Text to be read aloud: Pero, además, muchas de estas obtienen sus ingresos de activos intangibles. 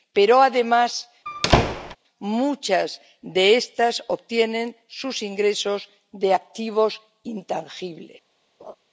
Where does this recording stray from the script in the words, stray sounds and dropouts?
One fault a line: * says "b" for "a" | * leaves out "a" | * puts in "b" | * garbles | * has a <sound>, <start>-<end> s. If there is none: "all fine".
* has a squeak, 1.3-2.0 s
* has a laugh, 8.6-8.8 s